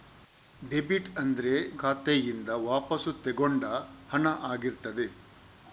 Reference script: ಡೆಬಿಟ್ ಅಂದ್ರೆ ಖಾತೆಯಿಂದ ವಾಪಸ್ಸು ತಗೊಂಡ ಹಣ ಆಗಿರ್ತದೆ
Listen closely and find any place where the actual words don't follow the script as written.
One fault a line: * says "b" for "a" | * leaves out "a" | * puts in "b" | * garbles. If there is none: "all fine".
all fine